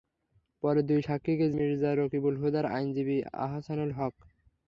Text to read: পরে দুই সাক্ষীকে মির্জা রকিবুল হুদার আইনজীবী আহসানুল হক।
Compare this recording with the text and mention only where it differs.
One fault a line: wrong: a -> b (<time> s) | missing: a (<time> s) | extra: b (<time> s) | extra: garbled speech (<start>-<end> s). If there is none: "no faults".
no faults